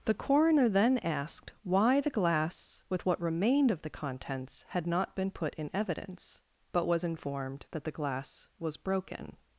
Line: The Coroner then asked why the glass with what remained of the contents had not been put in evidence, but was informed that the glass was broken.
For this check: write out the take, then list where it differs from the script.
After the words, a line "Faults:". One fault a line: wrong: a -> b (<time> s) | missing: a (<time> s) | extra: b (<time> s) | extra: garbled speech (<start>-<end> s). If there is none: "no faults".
The Coroner then asked why the glass with what remained of the contents had not been put in evidence, but was informed that the glass was broken.
Faults:
no faults